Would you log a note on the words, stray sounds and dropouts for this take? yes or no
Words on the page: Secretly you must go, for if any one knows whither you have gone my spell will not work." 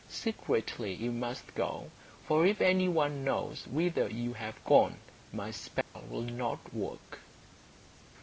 yes